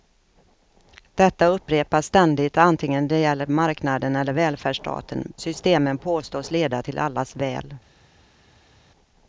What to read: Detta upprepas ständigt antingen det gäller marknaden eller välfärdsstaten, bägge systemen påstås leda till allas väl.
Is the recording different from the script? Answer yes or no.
yes